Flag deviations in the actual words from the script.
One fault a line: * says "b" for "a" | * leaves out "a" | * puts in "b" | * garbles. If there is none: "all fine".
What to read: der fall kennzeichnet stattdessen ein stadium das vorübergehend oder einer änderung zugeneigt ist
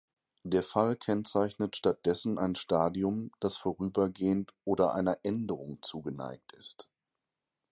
all fine